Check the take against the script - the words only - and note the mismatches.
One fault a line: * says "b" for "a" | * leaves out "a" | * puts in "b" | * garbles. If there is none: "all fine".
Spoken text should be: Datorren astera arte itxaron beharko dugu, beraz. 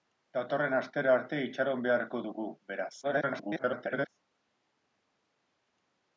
* garbles